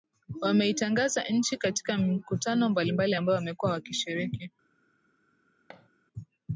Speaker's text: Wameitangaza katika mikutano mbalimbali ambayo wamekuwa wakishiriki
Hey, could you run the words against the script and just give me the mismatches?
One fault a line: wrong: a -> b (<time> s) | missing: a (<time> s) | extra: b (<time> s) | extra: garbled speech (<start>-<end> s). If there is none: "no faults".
extra: nchi (1.2 s)